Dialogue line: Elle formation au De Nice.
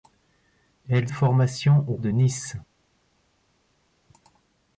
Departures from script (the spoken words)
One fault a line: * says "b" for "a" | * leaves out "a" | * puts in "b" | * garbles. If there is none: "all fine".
all fine